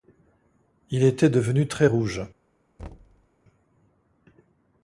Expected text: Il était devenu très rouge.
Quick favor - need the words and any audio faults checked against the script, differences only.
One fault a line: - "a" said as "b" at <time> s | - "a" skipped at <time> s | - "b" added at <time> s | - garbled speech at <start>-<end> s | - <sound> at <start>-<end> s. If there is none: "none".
- thud at 2.8-3.3 s